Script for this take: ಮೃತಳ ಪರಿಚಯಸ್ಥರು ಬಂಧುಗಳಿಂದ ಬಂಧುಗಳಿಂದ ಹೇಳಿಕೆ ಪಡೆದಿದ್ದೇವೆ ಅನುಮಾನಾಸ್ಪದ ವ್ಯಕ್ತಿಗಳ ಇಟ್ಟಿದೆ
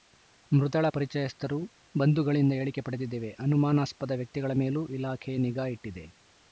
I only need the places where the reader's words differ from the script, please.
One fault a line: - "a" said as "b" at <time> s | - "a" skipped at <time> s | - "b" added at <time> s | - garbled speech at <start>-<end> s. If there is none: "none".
- "ಬಂಧುಗಳಿಂದ" skipped at 2.5 s
- "ಮೇಲೂ ಇಲಾಖೆ ನಿಗಾ" added at 4.5 s